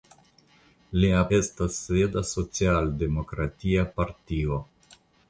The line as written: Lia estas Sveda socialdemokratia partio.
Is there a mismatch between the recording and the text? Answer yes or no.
no